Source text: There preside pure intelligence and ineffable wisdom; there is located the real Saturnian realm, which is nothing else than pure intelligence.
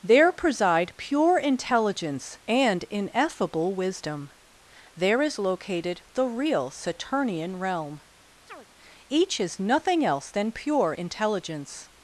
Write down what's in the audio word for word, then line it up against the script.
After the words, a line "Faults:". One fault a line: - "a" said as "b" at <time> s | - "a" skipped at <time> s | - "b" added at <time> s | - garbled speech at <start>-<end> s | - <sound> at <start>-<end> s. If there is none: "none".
There preside pure intelligence and ineffable wisdom; there is located the real Saturnian realm, each is nothing else than pure intelligence.
Faults:
- chirp at 8.5-8.7 s
- "which" said as "each" at 9.1 s